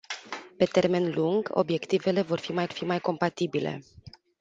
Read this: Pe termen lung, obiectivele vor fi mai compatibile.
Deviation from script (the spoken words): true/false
true